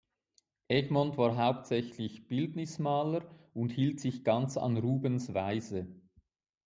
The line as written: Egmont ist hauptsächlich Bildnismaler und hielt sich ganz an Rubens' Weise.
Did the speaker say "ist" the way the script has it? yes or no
no